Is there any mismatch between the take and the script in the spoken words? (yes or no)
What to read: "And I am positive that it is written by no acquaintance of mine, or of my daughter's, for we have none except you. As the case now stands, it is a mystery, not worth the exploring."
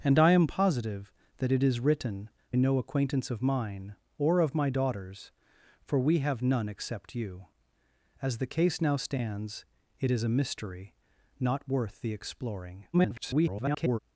yes